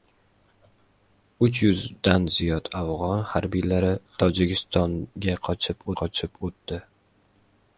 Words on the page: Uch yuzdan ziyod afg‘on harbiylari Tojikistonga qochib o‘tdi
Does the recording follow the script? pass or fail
fail